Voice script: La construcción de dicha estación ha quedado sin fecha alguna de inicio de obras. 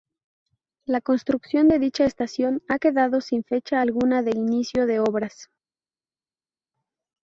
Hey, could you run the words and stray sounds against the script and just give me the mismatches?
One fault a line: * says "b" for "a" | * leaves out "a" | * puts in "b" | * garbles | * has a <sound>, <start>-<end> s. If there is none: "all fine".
all fine